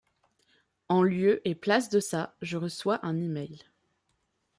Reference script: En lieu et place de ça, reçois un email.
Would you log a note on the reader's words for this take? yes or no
yes